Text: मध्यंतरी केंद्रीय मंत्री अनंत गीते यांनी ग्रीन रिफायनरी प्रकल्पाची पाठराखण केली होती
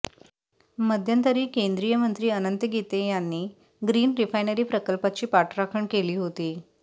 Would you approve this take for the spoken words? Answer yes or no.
yes